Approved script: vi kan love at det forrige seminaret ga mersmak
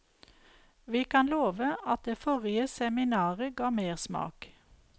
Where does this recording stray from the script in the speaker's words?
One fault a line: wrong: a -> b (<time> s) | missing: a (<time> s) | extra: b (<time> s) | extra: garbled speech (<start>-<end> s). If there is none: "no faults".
no faults